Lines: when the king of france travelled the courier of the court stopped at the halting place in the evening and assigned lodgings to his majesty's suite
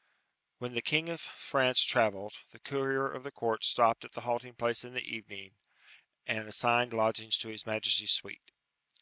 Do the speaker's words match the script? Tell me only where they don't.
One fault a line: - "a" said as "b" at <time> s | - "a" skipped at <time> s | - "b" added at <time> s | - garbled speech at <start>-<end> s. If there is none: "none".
none